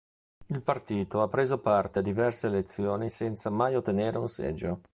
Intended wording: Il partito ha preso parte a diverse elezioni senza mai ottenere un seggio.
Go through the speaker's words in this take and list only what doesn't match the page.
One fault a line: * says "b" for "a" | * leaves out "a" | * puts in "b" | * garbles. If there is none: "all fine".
all fine